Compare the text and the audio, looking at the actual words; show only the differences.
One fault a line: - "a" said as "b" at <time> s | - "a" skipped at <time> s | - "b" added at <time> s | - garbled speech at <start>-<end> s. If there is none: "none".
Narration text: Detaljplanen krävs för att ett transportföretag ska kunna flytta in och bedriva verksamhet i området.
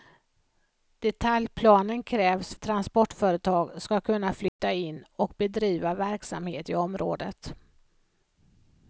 - "för att ett" skipped at 2.5 s